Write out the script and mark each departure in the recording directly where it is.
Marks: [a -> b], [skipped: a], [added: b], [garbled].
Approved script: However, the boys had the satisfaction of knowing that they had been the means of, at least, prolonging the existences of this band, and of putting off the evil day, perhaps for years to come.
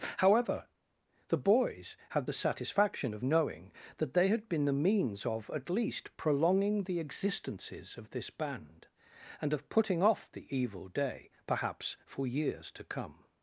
However, the boys had the satisfaction of knowing that they had been the means of, at least, prolonging the existences of this band, and of putting off the evil day, perhaps for years to come.